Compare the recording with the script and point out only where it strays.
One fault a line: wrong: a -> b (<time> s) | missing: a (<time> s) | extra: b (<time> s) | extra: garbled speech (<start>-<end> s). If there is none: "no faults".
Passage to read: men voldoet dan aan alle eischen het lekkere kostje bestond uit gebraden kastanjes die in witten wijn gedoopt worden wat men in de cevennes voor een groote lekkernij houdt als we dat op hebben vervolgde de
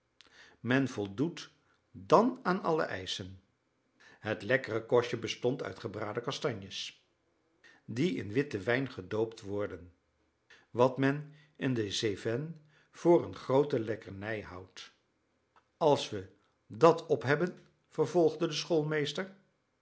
no faults